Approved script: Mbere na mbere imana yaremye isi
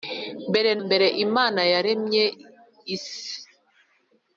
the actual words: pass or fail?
fail